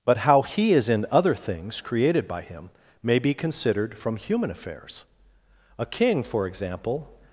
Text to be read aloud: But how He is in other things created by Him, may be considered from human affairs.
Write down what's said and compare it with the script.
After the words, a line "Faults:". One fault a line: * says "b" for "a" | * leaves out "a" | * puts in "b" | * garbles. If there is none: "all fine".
But how He is in other things created by Him, may be considered from human affairs. A king, for example
Faults:
* puts in "A king for example"